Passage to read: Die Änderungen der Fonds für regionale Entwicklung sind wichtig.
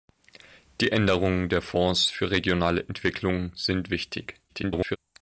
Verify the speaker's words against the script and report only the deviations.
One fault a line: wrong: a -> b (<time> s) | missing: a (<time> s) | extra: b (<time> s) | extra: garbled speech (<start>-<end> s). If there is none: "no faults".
extra: garbled speech (4.5-5.0 s)